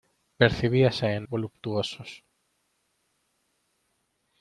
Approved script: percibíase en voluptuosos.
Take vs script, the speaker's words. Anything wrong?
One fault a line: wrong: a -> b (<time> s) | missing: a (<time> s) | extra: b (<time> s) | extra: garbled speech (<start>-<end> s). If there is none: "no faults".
no faults